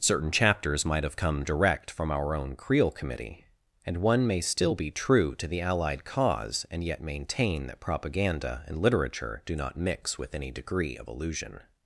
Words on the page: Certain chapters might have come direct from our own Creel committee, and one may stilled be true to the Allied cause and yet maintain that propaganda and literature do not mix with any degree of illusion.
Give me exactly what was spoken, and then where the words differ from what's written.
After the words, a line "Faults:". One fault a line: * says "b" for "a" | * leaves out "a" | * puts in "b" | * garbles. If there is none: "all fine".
Certain chapters might have come direct from our own Creel committee, and one may still be true to the Allied cause and yet maintain that propaganda and literature do not mix with any degree of illusion.
Faults:
* says "still" for "stilled"